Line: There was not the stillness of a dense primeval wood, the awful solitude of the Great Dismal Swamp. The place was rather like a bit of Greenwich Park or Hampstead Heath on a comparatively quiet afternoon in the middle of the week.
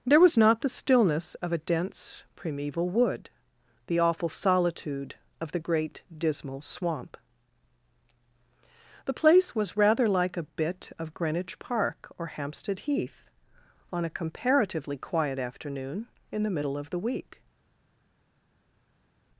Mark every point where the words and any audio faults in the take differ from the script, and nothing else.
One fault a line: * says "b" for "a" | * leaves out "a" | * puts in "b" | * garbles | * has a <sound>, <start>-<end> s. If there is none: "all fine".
all fine